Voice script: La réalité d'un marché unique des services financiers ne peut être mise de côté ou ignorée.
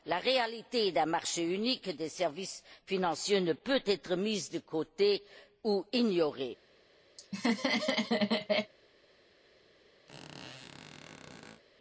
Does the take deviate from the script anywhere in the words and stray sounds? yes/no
yes